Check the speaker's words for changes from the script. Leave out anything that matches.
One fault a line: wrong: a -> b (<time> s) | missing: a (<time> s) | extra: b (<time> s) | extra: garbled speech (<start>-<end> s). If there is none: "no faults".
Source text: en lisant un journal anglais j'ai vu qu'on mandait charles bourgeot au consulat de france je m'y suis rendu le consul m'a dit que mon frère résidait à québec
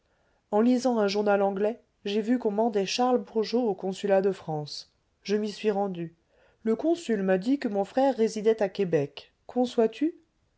no faults